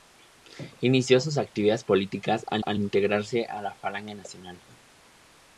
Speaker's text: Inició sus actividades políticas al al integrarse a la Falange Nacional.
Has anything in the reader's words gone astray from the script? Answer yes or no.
no